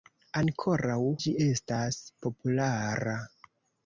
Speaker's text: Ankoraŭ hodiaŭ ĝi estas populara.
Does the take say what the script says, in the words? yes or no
no